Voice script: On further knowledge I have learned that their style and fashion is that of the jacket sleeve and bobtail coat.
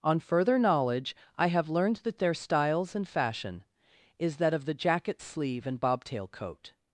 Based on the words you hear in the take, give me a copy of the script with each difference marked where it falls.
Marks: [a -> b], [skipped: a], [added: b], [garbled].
On further knowledge I have learned that their [style -> styles] and fashion is that of the jacket sleeve and bobtail coat.